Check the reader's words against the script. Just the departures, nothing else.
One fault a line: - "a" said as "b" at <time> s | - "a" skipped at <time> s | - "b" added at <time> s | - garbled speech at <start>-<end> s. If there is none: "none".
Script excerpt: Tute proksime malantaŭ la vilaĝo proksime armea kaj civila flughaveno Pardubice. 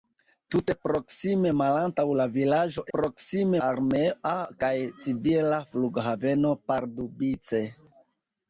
none